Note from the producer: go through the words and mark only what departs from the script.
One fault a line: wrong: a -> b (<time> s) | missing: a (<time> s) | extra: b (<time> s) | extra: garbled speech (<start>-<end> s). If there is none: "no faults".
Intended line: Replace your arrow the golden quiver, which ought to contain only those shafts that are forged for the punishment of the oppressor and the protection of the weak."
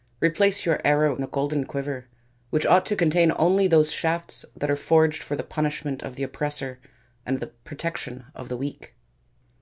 no faults